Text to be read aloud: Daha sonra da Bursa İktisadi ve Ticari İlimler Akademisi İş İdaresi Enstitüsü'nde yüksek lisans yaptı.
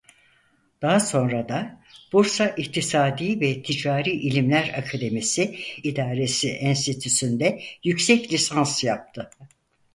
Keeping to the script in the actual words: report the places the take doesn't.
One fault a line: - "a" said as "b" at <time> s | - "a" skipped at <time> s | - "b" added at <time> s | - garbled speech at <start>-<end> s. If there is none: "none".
- "İş" skipped at 5.5 s